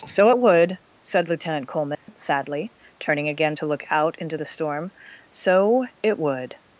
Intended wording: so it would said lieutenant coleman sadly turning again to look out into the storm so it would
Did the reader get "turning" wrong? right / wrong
right